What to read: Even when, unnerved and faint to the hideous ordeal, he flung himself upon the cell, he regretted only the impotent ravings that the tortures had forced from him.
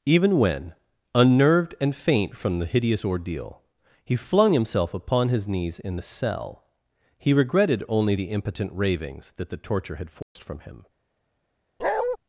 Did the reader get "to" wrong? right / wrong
wrong